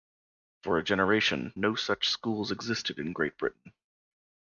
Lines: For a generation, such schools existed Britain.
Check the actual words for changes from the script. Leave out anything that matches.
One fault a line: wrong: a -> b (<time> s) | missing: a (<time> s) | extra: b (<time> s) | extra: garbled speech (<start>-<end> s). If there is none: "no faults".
extra: no (1.6 s)
extra: in Great (3.0 s)